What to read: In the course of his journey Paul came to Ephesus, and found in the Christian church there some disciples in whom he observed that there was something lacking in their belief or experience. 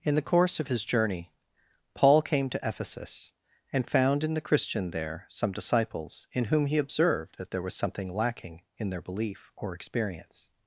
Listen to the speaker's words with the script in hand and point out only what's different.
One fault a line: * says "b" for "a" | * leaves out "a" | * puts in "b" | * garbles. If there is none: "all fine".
* leaves out "church"